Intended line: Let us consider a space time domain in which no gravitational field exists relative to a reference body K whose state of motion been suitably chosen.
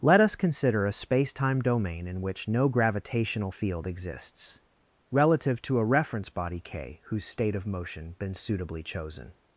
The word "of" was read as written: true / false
true